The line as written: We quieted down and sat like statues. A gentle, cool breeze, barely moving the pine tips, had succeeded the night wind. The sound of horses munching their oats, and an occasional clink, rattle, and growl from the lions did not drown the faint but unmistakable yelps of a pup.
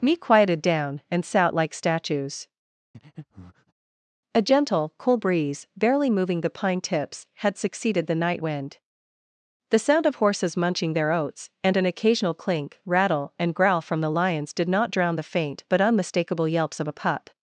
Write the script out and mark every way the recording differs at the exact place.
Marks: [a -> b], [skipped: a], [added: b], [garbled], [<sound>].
[We -> Me] quieted down and sat like statues. [breath] A gentle, cool breeze, barely moving the pine tips, had succeeded the night wind. The sound of horses munching their oats, and an occasional clink, rattle, and growl from the lions did not drown the faint but unmistakable yelps of a pup.